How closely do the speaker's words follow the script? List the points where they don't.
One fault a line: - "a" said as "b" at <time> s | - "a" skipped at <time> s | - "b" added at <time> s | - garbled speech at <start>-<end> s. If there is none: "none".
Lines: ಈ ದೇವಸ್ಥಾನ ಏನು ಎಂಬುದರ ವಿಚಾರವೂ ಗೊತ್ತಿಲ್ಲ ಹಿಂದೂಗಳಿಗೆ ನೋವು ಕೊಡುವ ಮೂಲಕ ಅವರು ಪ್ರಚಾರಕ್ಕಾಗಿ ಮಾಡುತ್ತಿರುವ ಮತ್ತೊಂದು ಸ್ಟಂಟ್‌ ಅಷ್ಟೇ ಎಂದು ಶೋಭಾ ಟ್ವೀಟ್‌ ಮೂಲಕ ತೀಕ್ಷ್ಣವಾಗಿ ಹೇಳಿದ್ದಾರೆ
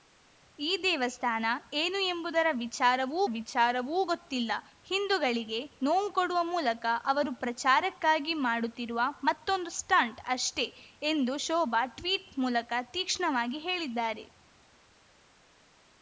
- "ವಿಚಾರವೂ" added at 3.4 s